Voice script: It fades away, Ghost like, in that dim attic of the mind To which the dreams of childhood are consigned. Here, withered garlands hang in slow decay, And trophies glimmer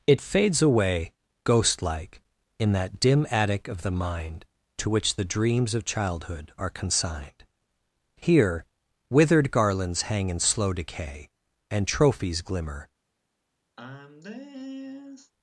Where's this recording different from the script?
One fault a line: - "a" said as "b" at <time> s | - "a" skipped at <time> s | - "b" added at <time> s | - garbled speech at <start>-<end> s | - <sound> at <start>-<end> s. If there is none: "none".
- sigh at 13.8-15.3 s